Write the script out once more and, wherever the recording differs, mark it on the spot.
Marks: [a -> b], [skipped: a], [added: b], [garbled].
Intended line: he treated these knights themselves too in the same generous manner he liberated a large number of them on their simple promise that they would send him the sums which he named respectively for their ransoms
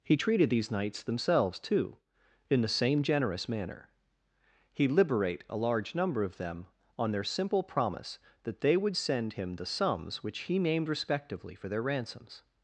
he treated these knights themselves too in the same generous manner he [liberated -> liberate] a large number of them on their simple promise that they would send him the sums which he named respectively for their ransoms